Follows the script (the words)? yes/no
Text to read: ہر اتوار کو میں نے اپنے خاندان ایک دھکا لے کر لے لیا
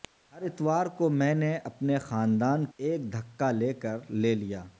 yes